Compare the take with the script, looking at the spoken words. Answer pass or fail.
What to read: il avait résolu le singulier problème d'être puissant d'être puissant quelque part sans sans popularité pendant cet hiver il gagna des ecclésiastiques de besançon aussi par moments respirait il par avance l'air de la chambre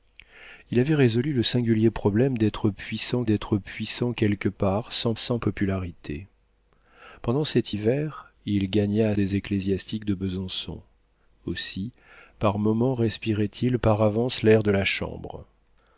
pass